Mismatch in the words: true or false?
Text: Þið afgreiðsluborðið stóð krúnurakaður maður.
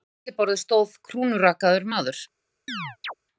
true